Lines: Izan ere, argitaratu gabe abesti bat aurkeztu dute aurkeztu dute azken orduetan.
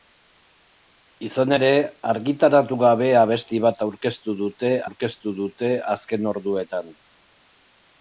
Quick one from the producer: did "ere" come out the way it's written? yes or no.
yes